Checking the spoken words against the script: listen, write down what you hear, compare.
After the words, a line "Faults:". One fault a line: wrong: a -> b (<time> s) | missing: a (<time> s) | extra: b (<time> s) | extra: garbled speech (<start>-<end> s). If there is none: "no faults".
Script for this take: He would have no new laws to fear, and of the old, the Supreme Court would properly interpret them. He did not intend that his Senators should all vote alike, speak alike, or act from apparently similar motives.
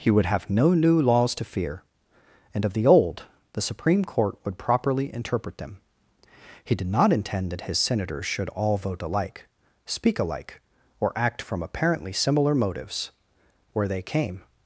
He would have no new laws to fear, and of the old, the Supreme Court would properly interpret them. He did not intend that his Senators should all vote alike, speak alike, or act from apparently similar motives. Where they came
Faults:
extra: Where they came (13.7 s)